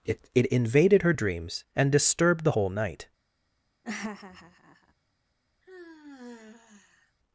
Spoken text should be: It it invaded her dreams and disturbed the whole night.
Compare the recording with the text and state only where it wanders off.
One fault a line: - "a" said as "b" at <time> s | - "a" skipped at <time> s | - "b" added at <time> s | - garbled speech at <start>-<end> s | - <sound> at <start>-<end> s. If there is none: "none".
- laugh at 3.8-4.9 s
- sigh at 5.6-7.2 s